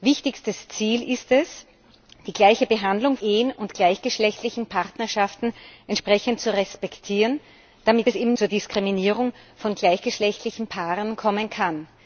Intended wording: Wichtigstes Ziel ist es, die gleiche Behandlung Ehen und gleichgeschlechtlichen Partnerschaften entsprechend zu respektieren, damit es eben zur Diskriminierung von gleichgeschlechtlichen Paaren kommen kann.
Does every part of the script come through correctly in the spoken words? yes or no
yes